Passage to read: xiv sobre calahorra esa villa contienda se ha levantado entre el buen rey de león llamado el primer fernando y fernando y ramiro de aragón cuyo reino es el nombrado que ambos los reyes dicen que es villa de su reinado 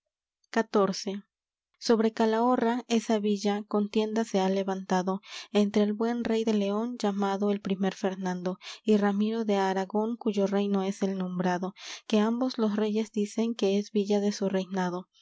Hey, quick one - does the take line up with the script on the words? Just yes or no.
no